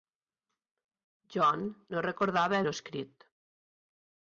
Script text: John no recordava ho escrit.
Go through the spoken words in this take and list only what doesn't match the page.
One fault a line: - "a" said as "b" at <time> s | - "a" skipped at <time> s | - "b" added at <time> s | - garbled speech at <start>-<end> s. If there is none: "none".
none